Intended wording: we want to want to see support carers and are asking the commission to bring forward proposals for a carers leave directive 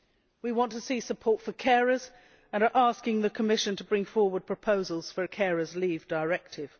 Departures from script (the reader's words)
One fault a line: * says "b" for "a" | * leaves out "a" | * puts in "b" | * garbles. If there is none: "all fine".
* leaves out "want to"
* puts in "for"